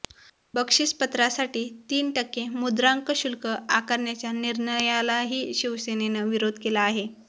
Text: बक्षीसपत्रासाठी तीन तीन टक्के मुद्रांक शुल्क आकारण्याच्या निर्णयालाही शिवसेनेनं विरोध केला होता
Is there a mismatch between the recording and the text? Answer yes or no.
yes